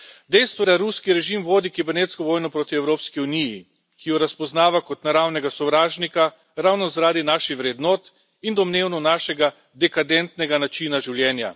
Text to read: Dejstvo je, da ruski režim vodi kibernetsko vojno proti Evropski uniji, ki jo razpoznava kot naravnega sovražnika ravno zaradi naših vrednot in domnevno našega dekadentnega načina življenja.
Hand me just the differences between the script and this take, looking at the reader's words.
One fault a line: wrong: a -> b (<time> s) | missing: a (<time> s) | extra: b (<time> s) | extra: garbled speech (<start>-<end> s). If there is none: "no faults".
missing: je (0.7 s)